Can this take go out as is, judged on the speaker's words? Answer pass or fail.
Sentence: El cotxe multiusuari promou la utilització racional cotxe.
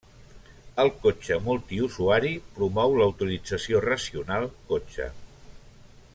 pass